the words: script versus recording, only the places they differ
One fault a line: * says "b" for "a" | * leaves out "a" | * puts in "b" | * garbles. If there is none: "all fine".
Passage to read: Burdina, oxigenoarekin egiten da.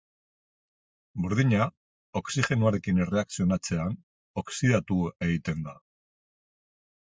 * puts in "erreakzionatzean oxidatu"